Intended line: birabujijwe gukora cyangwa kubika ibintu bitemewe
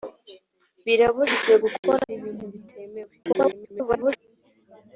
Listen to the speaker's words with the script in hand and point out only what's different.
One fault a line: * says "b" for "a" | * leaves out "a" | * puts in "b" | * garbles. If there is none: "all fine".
* leaves out "cyangwa kubika"
* garbles